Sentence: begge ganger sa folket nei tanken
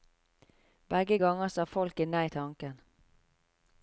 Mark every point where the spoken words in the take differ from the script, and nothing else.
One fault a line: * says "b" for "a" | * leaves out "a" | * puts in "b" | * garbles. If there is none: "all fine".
all fine